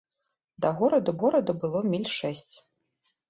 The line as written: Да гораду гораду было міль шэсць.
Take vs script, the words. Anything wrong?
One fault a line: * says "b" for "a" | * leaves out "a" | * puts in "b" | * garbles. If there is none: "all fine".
all fine